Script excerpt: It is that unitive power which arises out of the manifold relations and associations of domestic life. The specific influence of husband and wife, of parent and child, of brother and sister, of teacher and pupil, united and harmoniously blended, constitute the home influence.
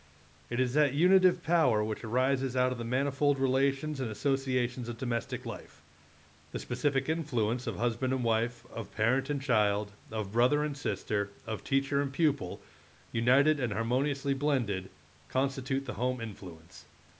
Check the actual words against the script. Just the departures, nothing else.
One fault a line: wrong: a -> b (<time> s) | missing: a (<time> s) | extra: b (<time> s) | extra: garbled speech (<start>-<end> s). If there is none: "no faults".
no faults